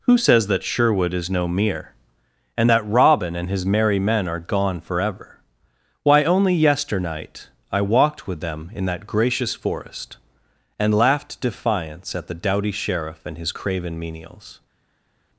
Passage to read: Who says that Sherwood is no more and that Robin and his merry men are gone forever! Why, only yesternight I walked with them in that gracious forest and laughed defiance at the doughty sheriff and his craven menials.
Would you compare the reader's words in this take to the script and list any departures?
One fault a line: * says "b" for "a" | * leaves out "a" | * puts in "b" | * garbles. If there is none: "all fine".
* says "mere" for "more"